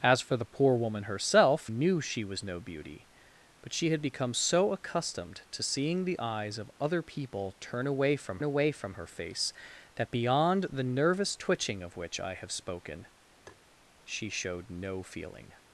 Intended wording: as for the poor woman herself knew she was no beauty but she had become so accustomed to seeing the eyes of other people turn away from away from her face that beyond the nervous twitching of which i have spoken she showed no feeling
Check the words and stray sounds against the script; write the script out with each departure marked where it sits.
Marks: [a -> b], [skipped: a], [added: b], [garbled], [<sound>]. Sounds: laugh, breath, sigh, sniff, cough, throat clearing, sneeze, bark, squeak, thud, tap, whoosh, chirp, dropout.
as for the poor woman herself knew she was no beauty but she had become so accustomed to seeing the eyes of other people turn away from away from her face that beyond the nervous twitching of which i have spoken [tap] she showed no feeling